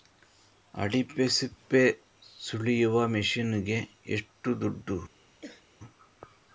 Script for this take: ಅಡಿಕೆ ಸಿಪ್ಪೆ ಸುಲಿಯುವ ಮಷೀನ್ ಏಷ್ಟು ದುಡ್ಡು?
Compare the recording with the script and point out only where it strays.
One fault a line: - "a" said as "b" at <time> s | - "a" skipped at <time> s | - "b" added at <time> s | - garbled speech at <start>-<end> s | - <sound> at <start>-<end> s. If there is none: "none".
- "ಗೆ" added at 3.6 s
- throat clearing at 5.4-5.7 s